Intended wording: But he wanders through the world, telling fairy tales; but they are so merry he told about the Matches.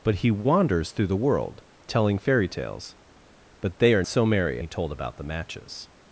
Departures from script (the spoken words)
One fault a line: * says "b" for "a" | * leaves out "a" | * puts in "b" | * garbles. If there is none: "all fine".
all fine